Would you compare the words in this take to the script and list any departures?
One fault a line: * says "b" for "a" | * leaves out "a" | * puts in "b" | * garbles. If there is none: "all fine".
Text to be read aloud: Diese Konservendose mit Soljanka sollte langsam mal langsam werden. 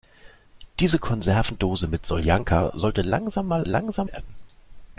all fine